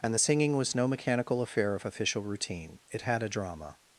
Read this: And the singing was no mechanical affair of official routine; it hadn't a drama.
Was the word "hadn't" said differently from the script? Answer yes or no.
yes